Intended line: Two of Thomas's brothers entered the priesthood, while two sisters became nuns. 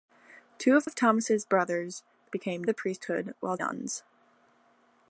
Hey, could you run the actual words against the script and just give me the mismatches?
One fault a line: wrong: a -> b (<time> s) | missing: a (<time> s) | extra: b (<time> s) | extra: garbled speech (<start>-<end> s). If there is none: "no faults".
extra: of (0.8 s)
wrong: entered -> became (2.3 s)
missing: two sisters became (3.6 s)